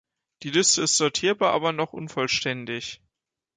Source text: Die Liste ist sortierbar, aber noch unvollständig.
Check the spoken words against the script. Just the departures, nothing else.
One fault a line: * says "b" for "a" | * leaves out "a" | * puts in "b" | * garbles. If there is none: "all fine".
all fine